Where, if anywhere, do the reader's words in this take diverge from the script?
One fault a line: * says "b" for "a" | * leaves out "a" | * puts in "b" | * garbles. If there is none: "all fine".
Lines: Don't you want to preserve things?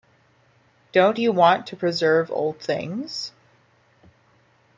* puts in "old"